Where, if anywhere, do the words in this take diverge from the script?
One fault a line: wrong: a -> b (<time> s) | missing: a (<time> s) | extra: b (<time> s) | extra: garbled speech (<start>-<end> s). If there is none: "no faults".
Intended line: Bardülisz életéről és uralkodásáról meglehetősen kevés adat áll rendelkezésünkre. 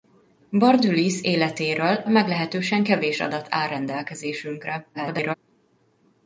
missing: és uralkodásáról (2.0 s)
extra: garbled speech (4.9-5.3 s)